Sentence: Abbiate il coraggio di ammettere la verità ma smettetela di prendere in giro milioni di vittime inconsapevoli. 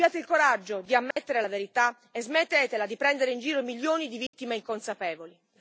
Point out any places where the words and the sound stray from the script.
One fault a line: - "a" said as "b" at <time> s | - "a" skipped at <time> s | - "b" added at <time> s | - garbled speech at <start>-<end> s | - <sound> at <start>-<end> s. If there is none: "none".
- dropout at 1.1-1.2 s
- "ma" said as "e" at 2.1 s
- dropout at 4.3-4.3 s